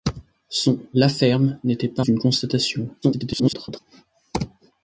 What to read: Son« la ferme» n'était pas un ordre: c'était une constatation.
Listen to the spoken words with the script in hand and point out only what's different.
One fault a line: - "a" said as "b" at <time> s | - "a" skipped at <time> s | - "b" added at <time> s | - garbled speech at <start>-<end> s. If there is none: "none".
- "un ordre c'était" skipped at 2.0 s
- garbled speech at 3.0-3.8 s